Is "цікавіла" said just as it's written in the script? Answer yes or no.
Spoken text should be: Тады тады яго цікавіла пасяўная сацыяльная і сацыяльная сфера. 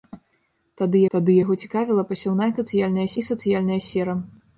yes